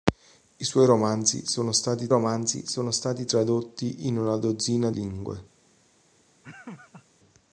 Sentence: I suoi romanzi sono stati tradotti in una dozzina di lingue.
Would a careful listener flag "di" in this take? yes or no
yes